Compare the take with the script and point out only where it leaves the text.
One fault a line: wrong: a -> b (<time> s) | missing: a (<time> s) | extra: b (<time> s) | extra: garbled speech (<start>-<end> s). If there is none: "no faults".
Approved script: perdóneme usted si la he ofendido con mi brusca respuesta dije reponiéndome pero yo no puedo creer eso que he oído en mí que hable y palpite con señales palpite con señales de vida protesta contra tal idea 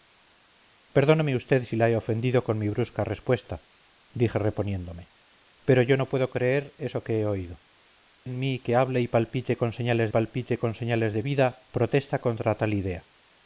no faults